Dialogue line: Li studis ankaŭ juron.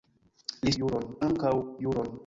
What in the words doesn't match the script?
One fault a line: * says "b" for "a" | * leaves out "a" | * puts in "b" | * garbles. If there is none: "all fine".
* says "juron" for "studis"